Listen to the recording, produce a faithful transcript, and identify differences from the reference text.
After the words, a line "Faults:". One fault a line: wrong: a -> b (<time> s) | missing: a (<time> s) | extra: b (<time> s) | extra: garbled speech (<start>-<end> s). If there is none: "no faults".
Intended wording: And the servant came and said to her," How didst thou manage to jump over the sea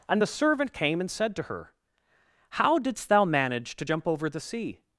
And the servant came and said to her," How didst thou manage to jump over the sea
Faults:
no faults